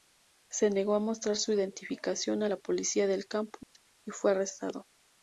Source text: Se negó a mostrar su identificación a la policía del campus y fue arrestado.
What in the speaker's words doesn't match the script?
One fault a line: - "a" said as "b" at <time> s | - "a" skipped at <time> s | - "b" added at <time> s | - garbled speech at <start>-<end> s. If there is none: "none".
none